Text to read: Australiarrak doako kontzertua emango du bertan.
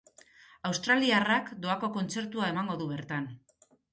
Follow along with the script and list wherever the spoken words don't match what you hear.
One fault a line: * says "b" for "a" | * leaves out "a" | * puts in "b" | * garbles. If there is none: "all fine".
all fine